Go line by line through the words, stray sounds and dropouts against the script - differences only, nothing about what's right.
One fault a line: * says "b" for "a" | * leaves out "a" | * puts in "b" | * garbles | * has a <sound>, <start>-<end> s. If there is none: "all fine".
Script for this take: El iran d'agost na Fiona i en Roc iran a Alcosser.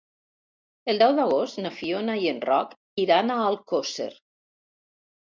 * says "deu" for "iran"